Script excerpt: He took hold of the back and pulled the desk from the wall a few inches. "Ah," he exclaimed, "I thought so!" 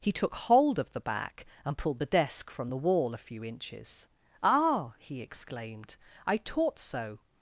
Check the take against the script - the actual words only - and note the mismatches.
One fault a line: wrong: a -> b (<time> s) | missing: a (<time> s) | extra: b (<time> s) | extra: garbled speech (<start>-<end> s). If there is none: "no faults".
wrong: thought -> taught (6.4 s)